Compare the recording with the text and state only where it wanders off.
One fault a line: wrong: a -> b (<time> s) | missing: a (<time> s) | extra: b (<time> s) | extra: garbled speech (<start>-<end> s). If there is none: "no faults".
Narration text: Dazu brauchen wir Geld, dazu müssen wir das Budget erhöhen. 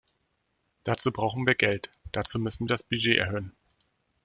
no faults